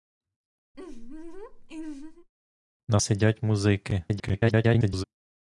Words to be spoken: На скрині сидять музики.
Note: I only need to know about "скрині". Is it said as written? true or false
false